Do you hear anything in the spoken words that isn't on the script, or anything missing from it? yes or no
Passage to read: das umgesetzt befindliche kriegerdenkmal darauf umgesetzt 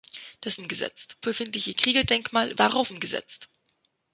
no